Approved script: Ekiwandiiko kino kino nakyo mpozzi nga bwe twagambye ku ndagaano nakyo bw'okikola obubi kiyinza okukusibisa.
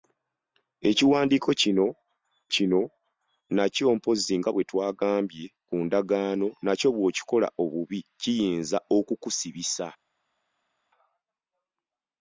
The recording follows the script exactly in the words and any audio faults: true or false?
true